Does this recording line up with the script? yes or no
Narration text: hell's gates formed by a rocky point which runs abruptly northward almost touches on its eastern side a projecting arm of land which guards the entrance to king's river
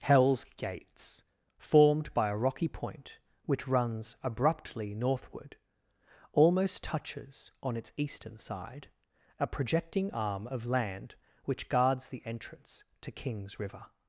yes